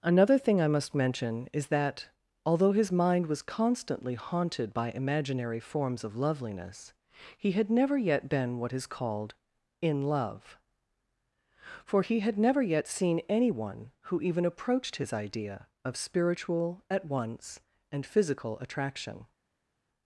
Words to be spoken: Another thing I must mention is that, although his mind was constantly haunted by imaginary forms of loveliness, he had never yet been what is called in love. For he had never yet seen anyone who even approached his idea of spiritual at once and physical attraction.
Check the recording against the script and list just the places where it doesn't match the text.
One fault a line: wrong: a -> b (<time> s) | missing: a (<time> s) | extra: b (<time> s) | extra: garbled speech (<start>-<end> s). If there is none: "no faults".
no faults